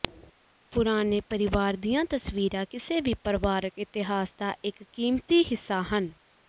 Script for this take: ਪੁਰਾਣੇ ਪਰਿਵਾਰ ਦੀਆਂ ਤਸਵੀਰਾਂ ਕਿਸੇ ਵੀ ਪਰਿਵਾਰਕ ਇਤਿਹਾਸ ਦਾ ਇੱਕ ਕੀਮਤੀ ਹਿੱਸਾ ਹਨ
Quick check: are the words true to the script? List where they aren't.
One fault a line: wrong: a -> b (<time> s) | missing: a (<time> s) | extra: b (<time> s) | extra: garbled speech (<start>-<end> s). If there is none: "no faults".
no faults